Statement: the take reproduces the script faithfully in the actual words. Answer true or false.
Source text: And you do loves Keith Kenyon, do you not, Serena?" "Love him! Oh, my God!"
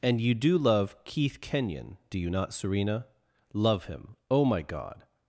false